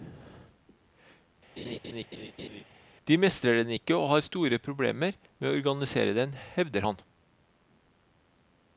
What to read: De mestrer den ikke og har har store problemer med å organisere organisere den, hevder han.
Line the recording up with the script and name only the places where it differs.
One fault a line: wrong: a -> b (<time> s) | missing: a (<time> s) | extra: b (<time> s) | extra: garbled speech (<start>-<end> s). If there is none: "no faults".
missing: har (4.2 s)
missing: organisere (6.2 s)